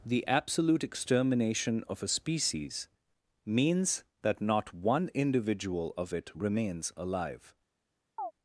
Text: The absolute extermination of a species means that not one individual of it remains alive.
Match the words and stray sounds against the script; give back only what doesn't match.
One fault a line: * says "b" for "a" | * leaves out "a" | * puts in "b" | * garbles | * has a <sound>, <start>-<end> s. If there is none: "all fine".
* has a chirp, 8.2-8.3 s